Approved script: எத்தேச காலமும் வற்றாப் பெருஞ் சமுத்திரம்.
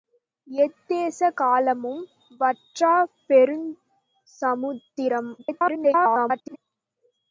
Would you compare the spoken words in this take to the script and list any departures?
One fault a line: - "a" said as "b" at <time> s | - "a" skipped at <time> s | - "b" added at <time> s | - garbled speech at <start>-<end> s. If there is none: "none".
- garbled speech at 5.4-6.6 s